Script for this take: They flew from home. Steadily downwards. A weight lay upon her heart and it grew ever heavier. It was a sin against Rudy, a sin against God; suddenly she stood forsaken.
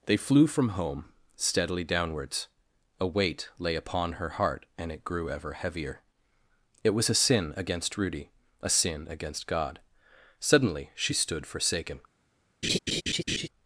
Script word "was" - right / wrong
right